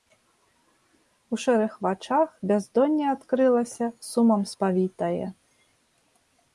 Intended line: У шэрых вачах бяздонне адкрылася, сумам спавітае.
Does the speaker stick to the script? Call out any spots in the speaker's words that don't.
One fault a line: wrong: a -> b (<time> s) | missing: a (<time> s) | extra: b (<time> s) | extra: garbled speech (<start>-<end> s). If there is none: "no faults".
no faults